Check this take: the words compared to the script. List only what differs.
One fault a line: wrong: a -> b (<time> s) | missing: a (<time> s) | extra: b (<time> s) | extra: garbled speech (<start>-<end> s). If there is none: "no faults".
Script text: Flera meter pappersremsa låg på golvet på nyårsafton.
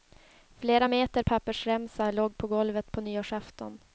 no faults